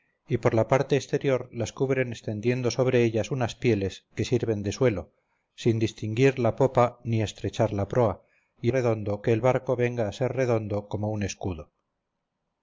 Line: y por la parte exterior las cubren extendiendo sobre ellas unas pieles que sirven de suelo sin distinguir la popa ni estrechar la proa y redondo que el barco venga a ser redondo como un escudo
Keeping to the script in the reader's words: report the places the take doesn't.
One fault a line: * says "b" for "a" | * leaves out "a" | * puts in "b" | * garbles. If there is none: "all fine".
all fine